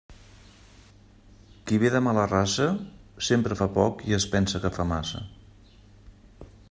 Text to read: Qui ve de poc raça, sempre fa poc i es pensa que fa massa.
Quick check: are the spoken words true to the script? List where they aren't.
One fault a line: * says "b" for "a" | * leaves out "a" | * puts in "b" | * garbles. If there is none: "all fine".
* says "mala" for "poc"